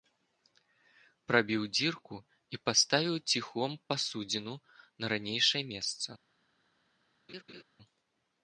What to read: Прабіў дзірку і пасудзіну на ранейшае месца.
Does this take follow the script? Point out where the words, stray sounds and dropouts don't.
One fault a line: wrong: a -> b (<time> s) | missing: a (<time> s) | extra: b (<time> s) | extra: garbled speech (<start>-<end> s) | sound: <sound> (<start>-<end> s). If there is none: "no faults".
extra: паставіў ціхом (2.7 s)
sound: laugh (7.3-7.6 s)